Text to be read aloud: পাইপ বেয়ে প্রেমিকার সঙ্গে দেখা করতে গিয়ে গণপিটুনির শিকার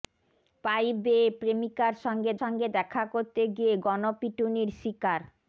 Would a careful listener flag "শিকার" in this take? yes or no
no